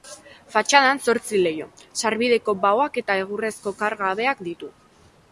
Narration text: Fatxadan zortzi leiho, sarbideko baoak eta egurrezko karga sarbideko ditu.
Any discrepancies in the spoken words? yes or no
yes